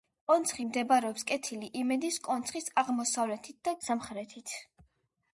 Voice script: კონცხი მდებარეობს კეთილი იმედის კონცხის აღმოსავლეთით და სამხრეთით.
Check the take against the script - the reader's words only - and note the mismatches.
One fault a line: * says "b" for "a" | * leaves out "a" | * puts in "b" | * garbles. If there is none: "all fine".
all fine